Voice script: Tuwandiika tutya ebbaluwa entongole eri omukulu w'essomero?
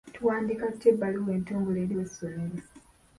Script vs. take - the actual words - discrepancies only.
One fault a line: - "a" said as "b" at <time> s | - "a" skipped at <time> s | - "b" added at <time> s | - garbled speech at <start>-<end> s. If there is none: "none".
- "omukulu" skipped at 1.9 s